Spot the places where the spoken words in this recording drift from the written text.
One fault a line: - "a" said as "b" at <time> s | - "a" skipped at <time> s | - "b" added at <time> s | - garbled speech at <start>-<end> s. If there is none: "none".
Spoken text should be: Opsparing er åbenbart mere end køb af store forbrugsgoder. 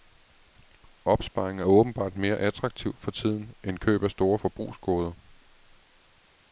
- "attraktivt for tiden" added at 2.3 s